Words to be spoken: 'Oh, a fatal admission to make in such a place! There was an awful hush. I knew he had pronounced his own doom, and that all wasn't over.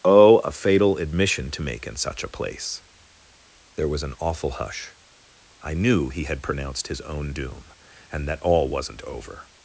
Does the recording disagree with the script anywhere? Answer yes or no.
no